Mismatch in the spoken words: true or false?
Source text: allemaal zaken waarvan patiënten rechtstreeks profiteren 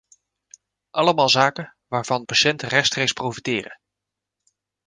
false